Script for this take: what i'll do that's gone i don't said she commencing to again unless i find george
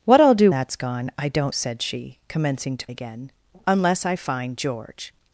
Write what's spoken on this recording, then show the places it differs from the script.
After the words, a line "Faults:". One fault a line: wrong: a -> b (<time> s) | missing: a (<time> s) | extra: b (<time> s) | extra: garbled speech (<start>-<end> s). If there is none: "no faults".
what i'll do that's gone i don't said she commencing to again unless i find george
Faults:
no faults